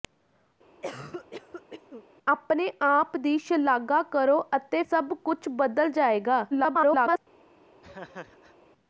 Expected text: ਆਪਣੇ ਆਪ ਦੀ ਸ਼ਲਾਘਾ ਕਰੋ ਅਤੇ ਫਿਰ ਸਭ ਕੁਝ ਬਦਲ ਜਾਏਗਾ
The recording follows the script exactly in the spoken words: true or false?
false